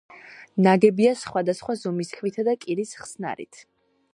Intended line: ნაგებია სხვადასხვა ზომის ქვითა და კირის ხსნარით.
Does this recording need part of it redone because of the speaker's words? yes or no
no